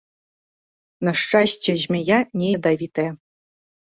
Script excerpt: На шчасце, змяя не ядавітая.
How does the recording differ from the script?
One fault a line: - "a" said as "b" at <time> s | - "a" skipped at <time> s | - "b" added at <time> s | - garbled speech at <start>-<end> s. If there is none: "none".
none